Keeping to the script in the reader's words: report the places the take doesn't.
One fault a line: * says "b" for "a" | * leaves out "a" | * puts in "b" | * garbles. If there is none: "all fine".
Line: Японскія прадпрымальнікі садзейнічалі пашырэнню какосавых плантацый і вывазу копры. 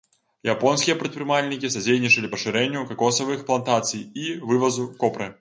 all fine